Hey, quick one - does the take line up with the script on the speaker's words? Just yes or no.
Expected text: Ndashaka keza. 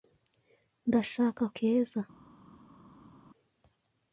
yes